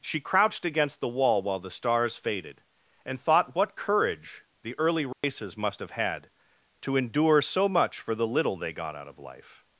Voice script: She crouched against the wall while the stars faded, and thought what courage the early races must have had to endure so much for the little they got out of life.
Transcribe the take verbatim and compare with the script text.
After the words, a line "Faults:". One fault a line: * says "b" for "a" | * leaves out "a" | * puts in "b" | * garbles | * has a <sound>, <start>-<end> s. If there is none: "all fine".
She crouched against the wall while the stars faded, and thought what courage the early races must have had to endure so much for the little they got out of life.
Faults:
* has a dropout, 5.1-5.2 s